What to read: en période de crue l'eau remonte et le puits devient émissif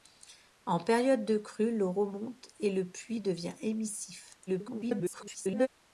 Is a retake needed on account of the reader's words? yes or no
yes